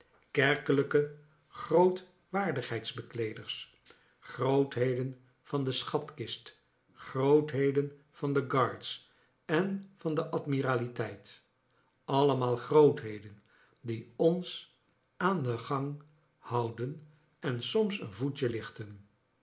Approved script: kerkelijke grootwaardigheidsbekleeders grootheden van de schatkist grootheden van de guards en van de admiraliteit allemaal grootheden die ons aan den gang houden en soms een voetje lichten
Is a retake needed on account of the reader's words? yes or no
no